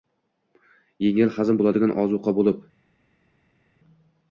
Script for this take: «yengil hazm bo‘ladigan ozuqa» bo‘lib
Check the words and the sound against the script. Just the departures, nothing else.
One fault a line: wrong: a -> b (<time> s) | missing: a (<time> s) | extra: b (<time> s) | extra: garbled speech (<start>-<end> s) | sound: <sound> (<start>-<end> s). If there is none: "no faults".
no faults